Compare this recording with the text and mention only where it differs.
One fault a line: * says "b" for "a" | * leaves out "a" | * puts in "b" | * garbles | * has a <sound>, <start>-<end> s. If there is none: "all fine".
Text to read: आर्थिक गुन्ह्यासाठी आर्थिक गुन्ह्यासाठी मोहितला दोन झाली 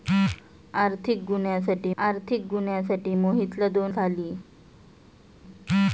all fine